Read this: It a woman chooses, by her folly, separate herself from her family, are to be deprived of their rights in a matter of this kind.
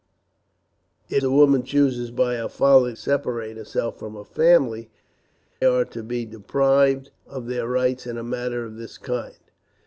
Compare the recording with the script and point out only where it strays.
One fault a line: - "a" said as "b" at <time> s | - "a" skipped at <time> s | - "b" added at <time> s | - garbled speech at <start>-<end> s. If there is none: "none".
none